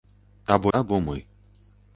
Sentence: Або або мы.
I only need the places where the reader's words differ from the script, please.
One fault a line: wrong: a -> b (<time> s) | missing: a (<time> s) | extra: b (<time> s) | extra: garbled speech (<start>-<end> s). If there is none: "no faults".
no faults